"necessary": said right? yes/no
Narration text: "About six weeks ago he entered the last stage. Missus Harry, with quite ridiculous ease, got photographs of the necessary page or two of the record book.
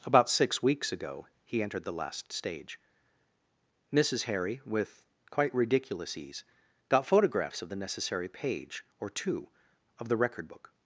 yes